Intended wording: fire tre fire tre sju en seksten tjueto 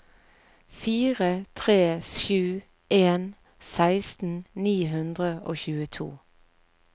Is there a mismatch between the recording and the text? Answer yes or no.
yes